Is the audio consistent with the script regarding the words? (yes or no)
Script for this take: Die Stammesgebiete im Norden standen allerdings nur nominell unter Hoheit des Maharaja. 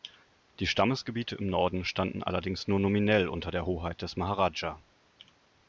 no